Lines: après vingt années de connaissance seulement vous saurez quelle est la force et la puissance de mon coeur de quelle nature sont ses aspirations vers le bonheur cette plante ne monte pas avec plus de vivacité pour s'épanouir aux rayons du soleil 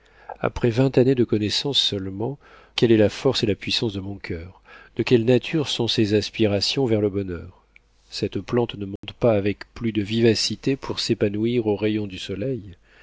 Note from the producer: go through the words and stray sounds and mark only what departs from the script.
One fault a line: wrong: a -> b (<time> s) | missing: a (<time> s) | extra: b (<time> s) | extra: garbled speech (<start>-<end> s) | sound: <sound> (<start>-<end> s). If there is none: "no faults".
missing: vous saurez (2.4 s)
sound: dropout (9.0-9.0 s)